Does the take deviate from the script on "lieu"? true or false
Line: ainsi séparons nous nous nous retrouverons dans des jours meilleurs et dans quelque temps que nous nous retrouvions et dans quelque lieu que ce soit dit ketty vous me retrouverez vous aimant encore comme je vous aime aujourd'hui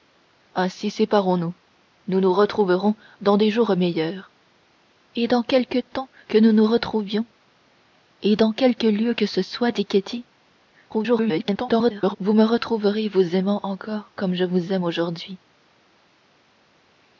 false